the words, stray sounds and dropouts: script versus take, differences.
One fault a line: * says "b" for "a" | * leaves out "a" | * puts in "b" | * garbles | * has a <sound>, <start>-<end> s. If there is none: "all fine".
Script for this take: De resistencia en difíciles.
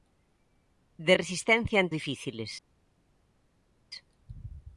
all fine